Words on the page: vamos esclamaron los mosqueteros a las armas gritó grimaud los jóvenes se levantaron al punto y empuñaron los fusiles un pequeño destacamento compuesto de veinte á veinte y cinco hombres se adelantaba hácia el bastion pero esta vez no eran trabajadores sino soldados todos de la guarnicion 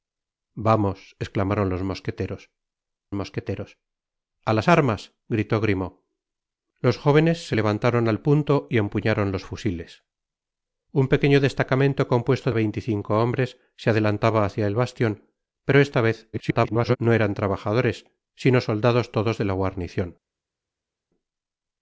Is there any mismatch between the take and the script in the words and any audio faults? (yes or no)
yes